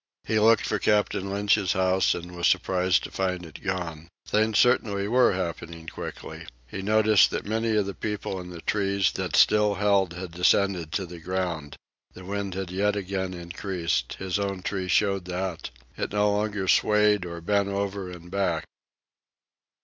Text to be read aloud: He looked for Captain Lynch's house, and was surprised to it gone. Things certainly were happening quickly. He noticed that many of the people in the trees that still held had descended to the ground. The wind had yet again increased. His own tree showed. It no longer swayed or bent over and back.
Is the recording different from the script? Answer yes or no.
yes